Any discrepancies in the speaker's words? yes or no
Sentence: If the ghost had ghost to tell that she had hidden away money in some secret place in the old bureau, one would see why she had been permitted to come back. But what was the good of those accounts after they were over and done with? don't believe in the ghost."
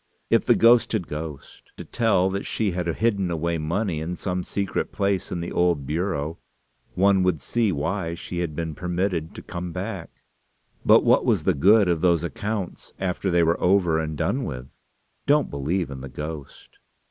no